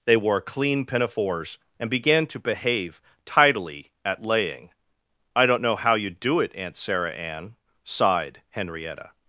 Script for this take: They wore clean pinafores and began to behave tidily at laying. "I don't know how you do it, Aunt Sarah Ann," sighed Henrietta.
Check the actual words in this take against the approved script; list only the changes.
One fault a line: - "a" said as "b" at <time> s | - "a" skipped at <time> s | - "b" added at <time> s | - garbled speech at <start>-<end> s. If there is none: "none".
none